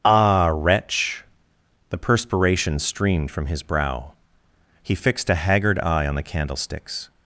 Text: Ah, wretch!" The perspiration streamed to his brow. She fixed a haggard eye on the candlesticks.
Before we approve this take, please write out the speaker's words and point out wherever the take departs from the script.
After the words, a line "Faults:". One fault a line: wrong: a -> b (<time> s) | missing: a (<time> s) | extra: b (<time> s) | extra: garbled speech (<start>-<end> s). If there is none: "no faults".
Ah, wretch!" The perspiration streamed from his brow. He fixed a haggard eye on the candlesticks.
Faults:
wrong: to -> from (3.3 s)
wrong: She -> He (4.8 s)